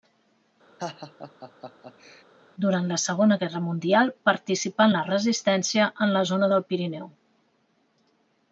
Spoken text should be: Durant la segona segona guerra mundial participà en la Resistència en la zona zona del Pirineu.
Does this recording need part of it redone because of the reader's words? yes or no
yes